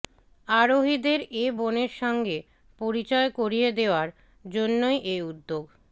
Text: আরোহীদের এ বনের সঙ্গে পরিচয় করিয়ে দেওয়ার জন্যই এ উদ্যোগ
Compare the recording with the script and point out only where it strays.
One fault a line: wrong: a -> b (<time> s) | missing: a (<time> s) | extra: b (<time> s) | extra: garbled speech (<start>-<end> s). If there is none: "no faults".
no faults